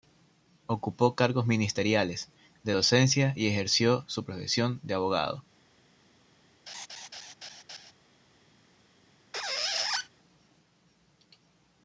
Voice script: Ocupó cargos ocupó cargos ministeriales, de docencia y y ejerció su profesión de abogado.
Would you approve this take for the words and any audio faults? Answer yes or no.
no